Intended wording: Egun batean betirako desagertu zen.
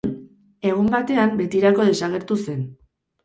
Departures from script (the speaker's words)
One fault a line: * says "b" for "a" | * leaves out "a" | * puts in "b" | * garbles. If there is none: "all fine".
all fine